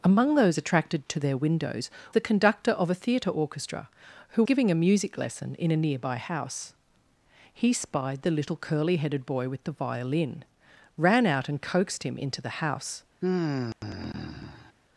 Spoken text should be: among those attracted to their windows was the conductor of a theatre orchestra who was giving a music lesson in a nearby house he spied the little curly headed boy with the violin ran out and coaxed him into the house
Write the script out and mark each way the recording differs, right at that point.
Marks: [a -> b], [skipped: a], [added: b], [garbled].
among those attracted to their windows [skipped: was] the conductor of a theatre orchestra who [skipped: was] giving a music lesson in a nearby house he spied the little curly headed boy with the violin ran out and coaxed him into the house